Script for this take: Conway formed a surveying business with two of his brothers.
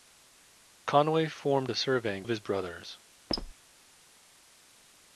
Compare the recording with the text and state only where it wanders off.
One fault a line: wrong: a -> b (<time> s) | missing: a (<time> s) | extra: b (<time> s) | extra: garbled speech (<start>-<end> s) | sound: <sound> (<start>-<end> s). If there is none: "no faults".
missing: business with two (2.2 s)
sound: squeak (3.3-3.5 s)